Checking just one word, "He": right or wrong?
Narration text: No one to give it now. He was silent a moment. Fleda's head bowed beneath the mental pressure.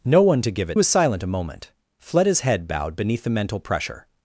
wrong